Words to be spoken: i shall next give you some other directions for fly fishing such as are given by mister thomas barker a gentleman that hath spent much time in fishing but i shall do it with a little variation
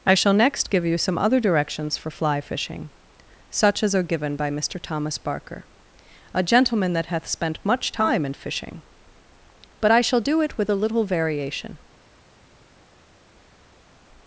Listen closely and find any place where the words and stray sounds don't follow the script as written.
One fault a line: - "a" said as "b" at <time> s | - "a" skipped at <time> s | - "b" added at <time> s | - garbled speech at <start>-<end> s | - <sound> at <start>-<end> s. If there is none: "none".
none